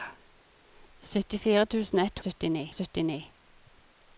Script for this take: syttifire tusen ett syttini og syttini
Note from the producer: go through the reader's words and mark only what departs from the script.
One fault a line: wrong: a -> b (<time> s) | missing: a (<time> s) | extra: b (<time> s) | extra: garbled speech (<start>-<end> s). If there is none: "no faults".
no faults